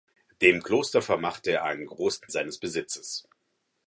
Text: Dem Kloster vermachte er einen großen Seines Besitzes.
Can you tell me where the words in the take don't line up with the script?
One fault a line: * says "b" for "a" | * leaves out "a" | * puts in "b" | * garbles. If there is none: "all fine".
all fine